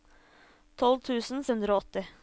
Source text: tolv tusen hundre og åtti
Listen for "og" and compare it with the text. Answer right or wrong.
right